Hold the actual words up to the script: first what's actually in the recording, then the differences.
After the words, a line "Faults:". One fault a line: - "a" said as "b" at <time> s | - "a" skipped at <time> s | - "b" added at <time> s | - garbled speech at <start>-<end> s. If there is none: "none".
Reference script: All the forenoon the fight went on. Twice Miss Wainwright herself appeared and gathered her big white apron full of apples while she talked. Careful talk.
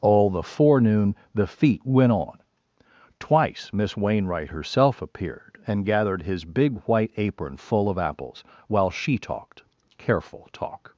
All the forenoon the feet went on. Twice Miss Wainwright herself appeared and gathered his big white apron full of apples while she talked. Careful talk.
Faults:
- "fight" said as "feet" at 1.5 s
- "her" said as "his" at 6.2 s